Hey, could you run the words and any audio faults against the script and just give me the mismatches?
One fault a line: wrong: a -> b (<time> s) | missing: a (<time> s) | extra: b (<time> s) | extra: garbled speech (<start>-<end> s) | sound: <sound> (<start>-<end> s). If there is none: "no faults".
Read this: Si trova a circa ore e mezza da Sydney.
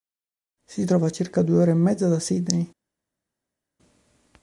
extra: due (1.4 s)